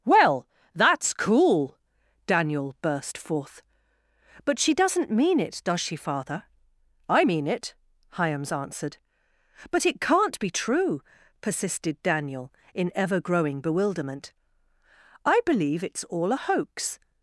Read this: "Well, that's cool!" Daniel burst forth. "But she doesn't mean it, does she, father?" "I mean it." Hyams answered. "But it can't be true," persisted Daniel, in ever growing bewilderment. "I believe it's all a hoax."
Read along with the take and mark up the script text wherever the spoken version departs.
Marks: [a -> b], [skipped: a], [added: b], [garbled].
"Well, that's cool!" Daniel burst forth. "But she doesn't mean it, does she, father?" "I mean it." Hyams answered. "But it can't be true," persisted Daniel, in ever growing bewilderment. "I believe it's all a hoax."